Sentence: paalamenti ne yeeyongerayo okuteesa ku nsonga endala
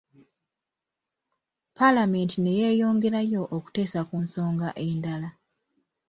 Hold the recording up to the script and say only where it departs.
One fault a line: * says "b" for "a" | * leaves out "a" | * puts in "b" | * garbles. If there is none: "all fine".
all fine